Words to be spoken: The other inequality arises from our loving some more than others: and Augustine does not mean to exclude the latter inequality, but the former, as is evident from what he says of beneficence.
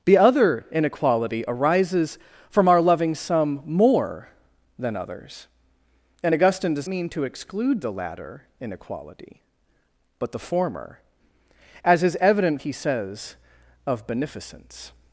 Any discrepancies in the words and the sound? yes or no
yes